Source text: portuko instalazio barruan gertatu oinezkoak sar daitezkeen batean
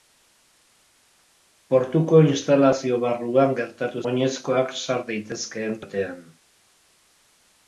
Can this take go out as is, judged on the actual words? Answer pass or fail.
pass